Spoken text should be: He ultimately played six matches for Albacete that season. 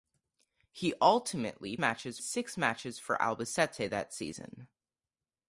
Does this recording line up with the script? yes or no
no